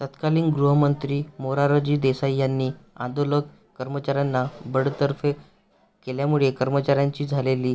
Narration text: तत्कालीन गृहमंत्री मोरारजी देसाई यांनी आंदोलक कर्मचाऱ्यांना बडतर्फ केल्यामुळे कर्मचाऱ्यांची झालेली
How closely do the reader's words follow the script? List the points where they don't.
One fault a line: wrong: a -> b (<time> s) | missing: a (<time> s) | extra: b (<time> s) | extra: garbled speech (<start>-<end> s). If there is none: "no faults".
no faults